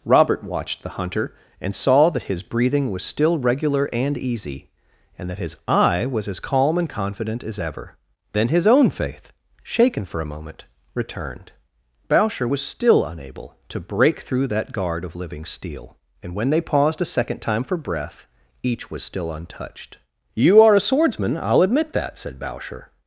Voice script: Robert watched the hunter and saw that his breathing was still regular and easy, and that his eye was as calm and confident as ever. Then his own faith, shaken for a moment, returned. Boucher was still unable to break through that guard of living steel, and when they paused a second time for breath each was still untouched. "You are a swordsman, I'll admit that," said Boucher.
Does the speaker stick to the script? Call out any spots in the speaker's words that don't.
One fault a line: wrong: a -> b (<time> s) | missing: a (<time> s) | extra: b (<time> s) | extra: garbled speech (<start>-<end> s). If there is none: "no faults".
no faults